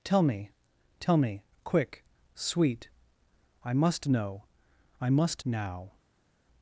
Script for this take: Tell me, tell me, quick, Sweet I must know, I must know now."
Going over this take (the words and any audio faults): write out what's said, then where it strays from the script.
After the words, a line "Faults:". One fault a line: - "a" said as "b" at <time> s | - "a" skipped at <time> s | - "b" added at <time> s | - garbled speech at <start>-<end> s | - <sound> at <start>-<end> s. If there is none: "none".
Tell me, tell me, quick, Sweet I must know, I must now."
Faults:
- "know" skipped at 5.5 s